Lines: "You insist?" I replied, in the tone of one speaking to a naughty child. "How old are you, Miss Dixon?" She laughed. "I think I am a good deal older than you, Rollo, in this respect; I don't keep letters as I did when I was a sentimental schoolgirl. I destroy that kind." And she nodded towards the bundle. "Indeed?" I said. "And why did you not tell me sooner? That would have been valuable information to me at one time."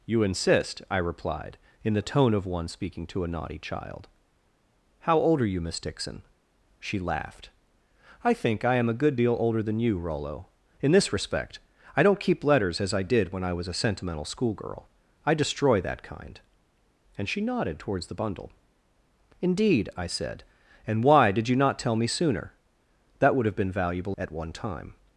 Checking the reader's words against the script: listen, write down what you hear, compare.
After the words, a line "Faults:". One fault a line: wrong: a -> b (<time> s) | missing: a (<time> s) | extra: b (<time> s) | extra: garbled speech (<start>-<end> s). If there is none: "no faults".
"You insist?" I replied, in the tone of one speaking to a naughty child. "How old are you, Miss Dixon?" She laughed. "I think I am a good deal older than you, Rollo, in this respect; I don't keep letters as I did when I was a sentimental schoolgirl. I destroy that kind." And she nodded towards the bundle. "Indeed?" I said. "And why did you not tell me sooner? That would have been valuable at one time."
Faults:
missing: information to me (24.1 s)